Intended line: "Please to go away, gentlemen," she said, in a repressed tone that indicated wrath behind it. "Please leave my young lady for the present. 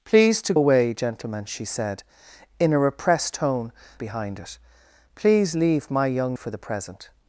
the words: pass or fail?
fail